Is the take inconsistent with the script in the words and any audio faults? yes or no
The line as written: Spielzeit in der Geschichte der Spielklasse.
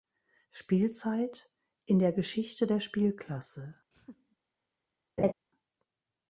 yes